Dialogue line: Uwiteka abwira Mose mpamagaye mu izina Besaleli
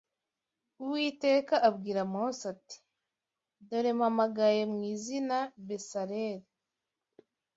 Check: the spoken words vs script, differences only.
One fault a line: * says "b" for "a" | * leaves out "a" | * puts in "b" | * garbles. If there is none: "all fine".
* puts in "ati Dore"